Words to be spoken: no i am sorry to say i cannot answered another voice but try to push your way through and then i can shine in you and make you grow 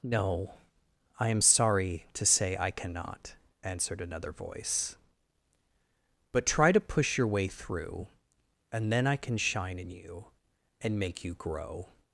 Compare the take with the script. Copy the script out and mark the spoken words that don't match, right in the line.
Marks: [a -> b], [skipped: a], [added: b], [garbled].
no i am sorry to say i cannot answered another voice but try to push your way through and then i can shine in you and make you grow